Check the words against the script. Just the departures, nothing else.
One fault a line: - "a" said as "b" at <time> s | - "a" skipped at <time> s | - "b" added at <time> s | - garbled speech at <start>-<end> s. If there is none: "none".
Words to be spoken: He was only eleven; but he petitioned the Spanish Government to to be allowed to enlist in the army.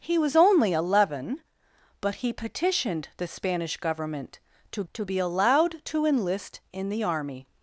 none